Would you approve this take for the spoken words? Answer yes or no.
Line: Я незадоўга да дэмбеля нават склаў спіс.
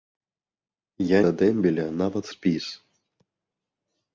no